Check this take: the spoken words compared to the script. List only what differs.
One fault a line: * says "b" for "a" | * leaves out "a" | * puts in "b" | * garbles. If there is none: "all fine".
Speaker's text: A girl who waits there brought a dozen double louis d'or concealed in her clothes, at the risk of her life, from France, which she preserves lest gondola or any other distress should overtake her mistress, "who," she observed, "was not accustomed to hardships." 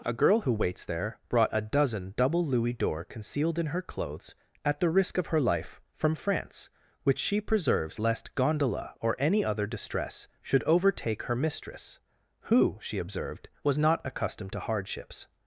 all fine